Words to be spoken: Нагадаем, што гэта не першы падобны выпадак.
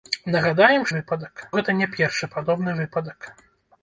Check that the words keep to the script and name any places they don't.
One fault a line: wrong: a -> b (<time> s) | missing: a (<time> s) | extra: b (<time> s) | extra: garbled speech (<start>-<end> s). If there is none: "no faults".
wrong: што -> выпадак (1.0 s)